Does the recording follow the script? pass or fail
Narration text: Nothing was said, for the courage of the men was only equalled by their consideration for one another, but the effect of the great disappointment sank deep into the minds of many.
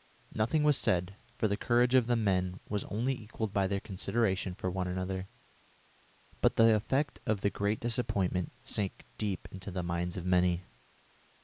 pass